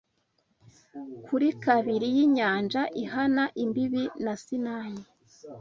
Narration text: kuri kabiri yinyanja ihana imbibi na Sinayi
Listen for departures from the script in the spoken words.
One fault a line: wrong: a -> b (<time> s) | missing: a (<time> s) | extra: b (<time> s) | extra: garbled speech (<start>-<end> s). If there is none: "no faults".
no faults